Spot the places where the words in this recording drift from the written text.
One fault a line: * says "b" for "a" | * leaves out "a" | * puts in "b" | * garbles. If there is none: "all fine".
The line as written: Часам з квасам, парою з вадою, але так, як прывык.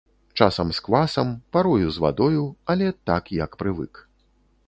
all fine